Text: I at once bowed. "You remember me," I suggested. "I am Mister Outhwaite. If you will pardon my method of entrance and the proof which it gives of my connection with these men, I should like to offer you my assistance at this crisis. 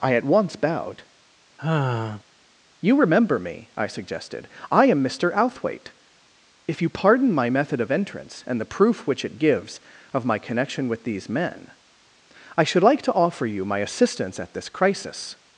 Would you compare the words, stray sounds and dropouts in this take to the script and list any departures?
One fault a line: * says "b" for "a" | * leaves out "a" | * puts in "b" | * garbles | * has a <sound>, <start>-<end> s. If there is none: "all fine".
* has a sigh, 1.6-2.2 s
* leaves out "will"